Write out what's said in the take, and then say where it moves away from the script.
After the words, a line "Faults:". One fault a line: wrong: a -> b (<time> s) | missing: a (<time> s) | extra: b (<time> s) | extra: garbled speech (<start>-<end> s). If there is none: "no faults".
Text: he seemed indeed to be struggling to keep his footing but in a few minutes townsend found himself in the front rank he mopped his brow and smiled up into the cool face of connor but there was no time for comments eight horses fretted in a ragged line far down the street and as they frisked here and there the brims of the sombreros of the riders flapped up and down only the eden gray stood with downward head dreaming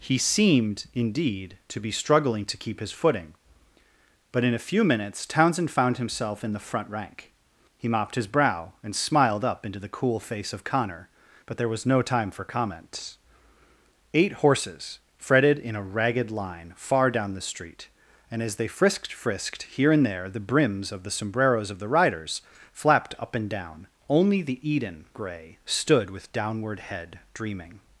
he seemed indeed to be struggling to keep his footing but in a few minutes townsend found himself in the front rank he mopped his brow and smiled up into the cool face of connor but there was no time for comments eight horses fretted in a ragged line far down the street and as they frisked frisked here and there the brims of the sombreros of the riders flapped up and down only the eden gray stood with downward head dreaming
Faults:
extra: frisked (19.1 s)